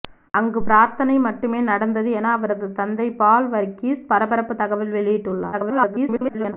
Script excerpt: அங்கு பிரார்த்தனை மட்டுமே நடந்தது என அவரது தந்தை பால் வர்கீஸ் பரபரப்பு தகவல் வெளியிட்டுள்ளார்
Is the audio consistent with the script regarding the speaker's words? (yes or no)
no